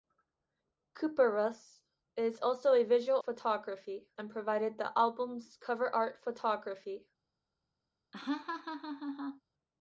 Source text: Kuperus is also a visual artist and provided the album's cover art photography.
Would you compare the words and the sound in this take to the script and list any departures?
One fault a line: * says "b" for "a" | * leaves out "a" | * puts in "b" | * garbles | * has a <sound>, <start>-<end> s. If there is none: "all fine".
* says "photography" for "artist"
* has a laugh, 8.1-9.4 s